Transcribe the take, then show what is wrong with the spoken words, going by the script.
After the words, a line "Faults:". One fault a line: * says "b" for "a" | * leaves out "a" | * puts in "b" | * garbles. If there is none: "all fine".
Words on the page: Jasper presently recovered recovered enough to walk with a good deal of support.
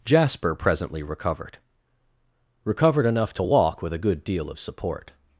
Jasper presently recovered recovered enough to walk with a good deal of support.
Faults:
all fine